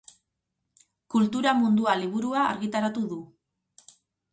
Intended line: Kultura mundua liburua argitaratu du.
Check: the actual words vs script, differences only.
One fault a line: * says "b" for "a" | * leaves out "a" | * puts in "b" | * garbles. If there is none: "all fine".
all fine